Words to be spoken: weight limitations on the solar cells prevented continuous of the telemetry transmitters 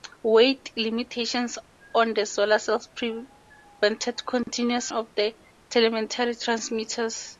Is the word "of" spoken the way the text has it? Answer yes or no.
yes